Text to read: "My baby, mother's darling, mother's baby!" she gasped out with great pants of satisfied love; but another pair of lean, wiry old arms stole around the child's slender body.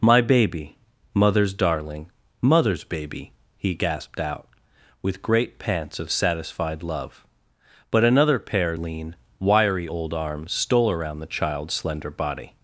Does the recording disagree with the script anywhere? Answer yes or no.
yes